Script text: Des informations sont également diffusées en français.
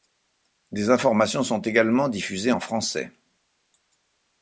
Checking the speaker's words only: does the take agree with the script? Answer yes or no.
yes